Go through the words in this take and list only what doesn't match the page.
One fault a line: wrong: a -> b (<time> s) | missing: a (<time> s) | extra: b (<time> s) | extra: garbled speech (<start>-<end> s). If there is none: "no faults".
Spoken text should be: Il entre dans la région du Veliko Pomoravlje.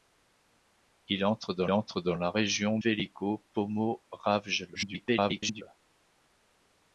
extra: entre dans (1.7 s)
missing: du (2.8 s)
extra: garbled speech (4.7-5.6 s)